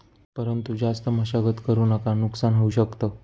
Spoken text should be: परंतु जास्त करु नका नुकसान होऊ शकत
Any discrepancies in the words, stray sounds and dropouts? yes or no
yes